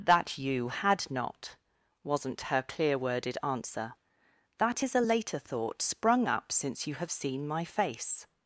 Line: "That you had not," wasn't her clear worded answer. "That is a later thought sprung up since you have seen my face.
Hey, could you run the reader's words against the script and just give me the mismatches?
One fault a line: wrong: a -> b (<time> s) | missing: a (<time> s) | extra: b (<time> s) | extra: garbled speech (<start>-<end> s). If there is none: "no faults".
no faults